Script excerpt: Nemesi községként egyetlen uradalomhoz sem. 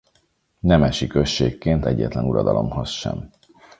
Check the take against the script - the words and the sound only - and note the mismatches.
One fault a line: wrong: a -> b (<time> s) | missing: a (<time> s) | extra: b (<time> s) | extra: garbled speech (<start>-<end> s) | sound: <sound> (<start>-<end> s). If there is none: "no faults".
no faults